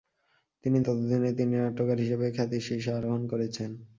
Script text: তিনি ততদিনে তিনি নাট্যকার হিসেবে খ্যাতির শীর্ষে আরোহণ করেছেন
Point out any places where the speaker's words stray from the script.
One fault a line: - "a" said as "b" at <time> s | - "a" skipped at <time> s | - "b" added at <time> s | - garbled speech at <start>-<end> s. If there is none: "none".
none